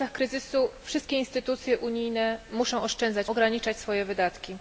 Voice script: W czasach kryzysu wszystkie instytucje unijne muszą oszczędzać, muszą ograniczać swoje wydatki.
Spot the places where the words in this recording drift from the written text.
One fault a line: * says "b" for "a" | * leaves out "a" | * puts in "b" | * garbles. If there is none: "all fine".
* leaves out "muszą"